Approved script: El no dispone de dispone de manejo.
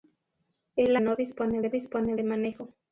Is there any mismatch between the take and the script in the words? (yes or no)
no